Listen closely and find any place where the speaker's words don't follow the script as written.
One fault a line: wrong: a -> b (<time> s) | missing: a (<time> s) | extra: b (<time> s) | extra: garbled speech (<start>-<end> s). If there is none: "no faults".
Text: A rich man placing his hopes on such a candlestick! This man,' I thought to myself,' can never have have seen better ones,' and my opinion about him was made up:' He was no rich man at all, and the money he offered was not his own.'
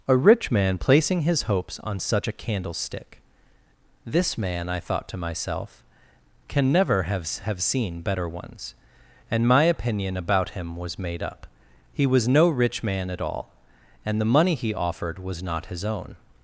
no faults